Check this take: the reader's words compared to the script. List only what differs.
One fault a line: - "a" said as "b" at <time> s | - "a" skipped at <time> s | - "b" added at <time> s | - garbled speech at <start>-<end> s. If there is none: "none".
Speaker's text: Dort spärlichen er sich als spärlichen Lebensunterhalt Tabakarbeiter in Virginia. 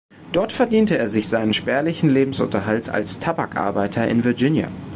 - "spärlichen" said as "verdiente" at 0.5 s
- "als" said as "seinen" at 1.3 s
- "als" added at 2.9 s